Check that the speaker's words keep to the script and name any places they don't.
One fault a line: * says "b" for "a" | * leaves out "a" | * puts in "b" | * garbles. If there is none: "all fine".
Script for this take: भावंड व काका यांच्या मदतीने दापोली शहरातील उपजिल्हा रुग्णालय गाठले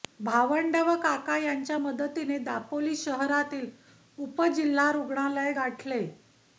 all fine